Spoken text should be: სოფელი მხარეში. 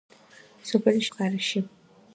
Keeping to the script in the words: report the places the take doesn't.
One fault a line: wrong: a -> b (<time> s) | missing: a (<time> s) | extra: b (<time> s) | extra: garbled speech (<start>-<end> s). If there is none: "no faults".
no faults